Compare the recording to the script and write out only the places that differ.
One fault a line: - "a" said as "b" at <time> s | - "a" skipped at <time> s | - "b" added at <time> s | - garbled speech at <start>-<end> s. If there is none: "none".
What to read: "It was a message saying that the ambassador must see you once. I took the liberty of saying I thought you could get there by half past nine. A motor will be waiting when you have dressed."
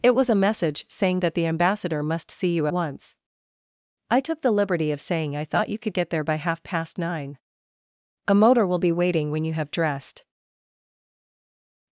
none